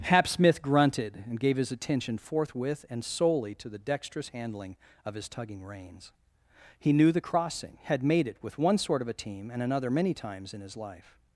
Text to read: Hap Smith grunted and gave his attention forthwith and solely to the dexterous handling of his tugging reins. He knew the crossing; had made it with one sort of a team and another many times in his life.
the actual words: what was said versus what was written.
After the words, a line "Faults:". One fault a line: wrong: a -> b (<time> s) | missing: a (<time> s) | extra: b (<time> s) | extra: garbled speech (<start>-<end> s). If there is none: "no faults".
Hap Smith grunted and gave his attention forthwith and solely to the dexterous handling of his tugging reins. He knew the crossing; had made it with one sort of a team and another many times in his life.
Faults:
no faults